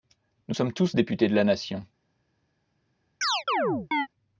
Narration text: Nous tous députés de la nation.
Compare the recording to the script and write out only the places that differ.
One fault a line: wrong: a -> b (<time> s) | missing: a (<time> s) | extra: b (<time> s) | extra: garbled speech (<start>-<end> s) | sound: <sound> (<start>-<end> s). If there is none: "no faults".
extra: sommes (0.5 s)
sound: chirp (3.2-4.1 s)